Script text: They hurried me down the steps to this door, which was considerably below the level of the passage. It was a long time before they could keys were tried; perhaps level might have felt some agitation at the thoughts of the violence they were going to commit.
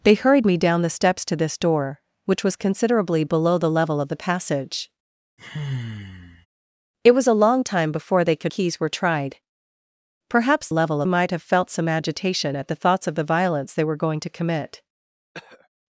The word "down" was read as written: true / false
true